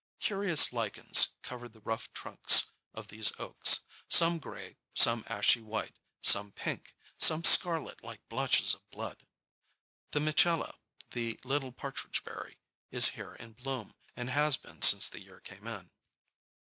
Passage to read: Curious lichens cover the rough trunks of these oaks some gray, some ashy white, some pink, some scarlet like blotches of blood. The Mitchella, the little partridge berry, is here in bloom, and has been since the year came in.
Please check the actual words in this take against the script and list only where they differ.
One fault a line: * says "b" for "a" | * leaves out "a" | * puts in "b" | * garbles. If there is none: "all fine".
all fine